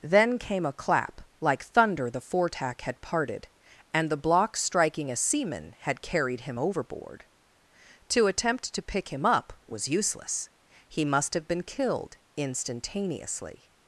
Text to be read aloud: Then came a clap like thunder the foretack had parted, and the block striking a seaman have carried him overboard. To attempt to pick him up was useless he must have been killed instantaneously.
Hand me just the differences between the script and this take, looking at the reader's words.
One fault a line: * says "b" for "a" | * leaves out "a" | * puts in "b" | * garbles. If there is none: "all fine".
* says "had" for "have"